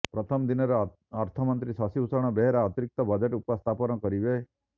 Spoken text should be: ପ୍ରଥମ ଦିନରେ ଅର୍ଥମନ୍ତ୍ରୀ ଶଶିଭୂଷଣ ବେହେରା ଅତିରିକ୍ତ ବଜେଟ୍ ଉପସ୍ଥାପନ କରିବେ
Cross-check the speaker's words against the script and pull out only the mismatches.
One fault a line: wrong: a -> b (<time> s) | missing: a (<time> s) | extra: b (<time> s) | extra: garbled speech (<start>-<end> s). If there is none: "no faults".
no faults